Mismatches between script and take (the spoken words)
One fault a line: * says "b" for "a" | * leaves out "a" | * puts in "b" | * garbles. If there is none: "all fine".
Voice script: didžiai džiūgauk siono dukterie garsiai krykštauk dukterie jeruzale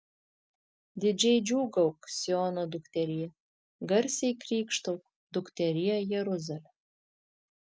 all fine